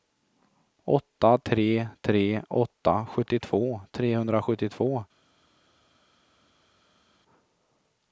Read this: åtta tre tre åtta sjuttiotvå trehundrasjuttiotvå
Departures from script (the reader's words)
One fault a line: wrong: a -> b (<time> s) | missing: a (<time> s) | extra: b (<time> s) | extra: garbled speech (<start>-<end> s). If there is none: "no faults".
no faults